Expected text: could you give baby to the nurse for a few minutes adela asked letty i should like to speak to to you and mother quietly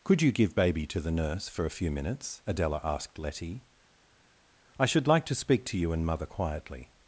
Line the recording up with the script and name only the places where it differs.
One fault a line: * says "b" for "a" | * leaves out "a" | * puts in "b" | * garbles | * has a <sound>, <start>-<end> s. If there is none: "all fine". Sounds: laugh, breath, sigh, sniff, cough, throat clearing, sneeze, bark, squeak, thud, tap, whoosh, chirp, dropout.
* leaves out "to"